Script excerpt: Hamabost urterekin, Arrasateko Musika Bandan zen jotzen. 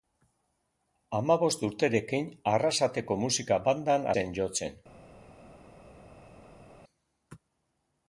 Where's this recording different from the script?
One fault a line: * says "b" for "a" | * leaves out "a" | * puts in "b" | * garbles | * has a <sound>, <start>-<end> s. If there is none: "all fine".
all fine